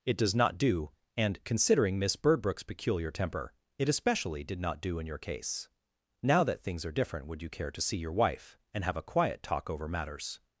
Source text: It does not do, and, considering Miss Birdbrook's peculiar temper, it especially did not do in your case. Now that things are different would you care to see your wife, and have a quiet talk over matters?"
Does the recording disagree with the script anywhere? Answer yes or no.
no